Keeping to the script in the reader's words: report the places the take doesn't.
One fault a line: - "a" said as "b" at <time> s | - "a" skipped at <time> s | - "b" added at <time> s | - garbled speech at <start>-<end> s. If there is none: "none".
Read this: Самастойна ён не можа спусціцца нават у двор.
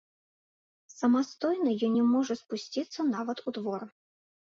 none